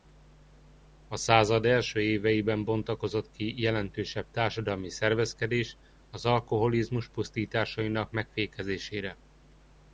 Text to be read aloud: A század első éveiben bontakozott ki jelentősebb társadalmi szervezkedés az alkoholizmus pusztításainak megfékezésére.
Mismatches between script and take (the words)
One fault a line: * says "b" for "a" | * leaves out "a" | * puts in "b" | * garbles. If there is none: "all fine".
all fine